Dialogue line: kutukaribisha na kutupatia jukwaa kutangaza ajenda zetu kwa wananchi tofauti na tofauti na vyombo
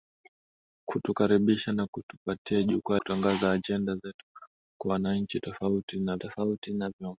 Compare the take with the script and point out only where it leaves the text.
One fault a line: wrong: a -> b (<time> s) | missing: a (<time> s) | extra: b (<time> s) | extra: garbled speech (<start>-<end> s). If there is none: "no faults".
no faults